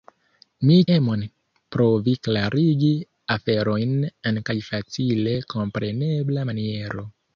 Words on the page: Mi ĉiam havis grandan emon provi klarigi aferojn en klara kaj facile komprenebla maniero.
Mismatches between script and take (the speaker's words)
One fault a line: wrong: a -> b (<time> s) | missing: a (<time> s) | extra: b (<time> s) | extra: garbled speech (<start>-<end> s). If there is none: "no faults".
missing: ĉiam havis grandan (0.8 s)
missing: klara (4.4 s)